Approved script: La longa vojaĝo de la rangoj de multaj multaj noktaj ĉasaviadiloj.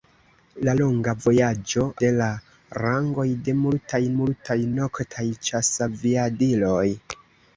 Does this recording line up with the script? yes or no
yes